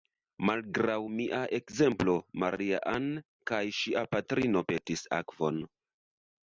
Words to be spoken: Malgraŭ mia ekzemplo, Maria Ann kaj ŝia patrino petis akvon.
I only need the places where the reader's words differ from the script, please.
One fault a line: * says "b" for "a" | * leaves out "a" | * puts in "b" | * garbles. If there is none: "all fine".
all fine